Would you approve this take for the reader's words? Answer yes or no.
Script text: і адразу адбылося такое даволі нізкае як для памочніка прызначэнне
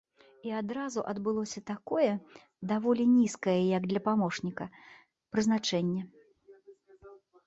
yes